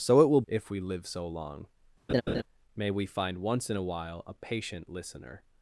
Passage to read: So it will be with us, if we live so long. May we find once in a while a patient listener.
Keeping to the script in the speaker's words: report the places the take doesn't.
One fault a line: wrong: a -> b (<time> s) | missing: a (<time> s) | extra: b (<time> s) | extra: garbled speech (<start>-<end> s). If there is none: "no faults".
missing: be with us (0.4 s)